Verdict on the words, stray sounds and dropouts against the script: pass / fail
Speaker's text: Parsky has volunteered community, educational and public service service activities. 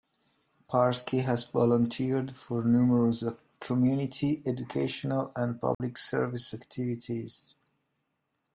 fail